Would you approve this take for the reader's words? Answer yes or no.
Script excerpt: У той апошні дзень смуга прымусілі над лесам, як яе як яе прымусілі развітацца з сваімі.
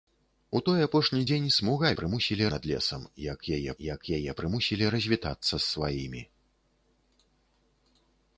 yes